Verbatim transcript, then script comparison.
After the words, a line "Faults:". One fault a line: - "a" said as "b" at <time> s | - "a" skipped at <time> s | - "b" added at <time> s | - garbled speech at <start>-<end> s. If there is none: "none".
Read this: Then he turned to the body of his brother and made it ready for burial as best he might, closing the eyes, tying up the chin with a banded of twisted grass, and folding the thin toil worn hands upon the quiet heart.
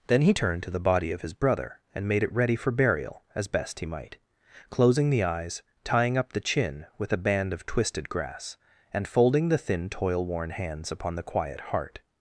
Then he turned to the body of his brother and made it ready for burial as best he might, closing the eyes, tying up the chin with a band of twisted grass, and folding the thin toil worn hands upon the quiet heart.
Faults:
- "banded" said as "band" at 7.2 s